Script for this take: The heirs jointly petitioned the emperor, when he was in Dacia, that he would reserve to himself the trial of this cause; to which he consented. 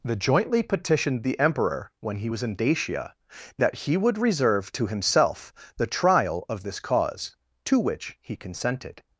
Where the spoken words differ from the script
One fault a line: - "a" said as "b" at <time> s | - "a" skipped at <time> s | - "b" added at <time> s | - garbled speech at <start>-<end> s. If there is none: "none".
- "heirs" skipped at 0.1 s